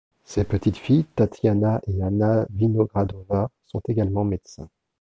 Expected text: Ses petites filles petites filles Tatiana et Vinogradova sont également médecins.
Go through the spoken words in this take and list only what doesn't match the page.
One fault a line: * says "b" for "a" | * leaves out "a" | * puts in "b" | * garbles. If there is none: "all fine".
* leaves out "petites filles"
* puts in "Anna"